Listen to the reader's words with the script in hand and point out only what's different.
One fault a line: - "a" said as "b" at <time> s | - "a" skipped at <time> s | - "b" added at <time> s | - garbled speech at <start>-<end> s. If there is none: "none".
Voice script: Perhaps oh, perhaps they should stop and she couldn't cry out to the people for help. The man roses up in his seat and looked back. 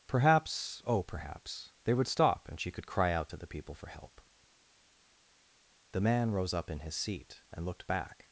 - "should" said as "would" at 1.9 s
- "couldn't" said as "could" at 2.7 s
- "roses" said as "rose" at 6.3 s